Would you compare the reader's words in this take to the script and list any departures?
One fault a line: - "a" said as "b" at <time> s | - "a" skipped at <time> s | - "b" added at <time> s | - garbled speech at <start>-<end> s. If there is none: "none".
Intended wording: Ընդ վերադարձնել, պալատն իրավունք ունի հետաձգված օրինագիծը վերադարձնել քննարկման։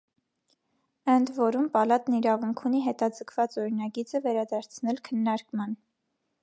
- "վերադարձնել" said as "որում" at 1.4 s